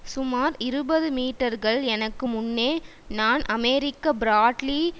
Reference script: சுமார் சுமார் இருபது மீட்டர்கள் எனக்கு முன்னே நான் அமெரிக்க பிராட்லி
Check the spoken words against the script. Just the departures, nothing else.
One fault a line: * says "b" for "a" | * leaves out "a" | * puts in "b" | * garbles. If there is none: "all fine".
* leaves out "சுமார்"